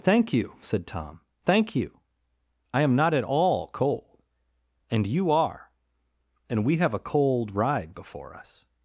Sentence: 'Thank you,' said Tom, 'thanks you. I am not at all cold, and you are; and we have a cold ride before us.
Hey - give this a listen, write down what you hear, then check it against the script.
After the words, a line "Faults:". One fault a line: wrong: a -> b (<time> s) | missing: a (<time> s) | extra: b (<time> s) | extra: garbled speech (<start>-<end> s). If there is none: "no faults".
'Thank you,' said Tom, 'thank you. I am not at all cold, and you are; and we have a cold ride before us.
Faults:
wrong: thanks -> thank (1.4 s)